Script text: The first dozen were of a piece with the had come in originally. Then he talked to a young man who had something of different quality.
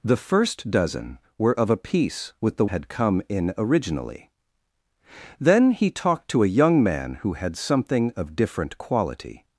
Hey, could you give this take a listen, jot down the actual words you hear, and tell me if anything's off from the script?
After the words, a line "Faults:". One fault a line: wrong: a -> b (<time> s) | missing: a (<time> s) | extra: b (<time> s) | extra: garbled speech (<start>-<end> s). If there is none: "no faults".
The first dozen were of a piece with the had come in originally. Then he talked to a young man who had something of different quality.
Faults:
no faults